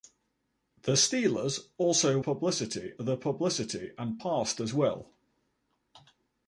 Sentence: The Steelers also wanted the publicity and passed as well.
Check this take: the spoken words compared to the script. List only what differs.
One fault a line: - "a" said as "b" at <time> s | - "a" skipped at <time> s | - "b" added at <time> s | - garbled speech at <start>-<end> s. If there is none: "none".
- "wanted" said as "publicity" at 2.2 s